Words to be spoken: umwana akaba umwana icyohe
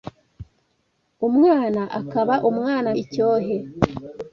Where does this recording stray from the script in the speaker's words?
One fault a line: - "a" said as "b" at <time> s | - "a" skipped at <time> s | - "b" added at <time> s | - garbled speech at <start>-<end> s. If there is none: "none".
none